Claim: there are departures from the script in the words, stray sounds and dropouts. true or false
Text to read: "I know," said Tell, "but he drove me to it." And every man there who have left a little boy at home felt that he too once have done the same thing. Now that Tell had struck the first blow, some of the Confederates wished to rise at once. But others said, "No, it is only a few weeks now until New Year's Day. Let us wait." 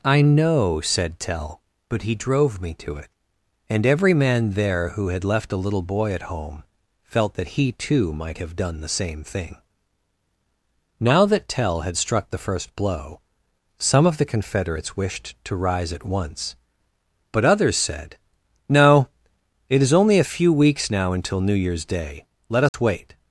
true